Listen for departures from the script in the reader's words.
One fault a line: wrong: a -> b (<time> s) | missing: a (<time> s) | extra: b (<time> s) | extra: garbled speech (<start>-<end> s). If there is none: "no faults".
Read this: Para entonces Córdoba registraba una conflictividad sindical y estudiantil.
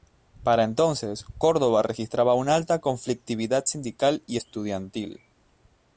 extra: alta (2.5 s)